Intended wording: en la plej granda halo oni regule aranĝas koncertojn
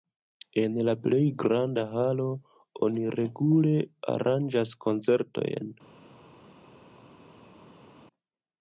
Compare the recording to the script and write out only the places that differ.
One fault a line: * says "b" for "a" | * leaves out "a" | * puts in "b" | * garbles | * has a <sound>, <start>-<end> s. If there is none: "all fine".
all fine